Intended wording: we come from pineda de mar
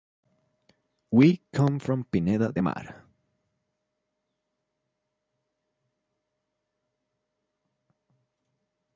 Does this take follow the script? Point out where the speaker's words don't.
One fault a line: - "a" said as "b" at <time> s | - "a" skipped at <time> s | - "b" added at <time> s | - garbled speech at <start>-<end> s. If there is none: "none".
none